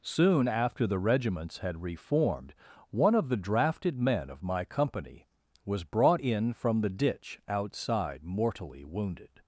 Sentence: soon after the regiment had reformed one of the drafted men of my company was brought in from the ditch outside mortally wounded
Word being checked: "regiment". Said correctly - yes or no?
no